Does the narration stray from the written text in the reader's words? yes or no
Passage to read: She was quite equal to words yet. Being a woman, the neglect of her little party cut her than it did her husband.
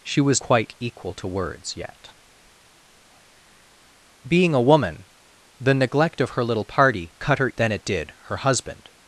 no